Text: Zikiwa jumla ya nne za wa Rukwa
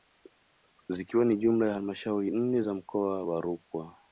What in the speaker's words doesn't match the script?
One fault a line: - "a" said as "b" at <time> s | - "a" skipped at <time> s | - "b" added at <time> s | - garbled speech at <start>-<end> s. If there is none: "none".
- "ni" added at 1.2 s
- "halmashauri" added at 1.7 s
- "mkoa" added at 2.7 s